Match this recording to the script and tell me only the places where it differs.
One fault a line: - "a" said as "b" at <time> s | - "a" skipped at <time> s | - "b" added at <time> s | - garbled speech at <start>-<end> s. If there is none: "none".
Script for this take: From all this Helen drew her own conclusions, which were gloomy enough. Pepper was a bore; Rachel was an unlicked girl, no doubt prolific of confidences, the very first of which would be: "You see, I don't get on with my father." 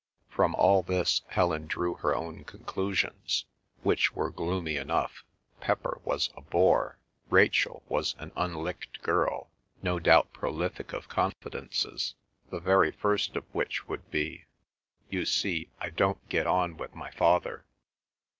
none